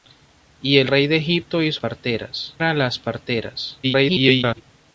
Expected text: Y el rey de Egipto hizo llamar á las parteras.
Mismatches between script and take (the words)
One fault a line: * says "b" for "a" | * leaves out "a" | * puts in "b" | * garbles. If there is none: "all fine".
* says "parteras" for "llamar"
* garbles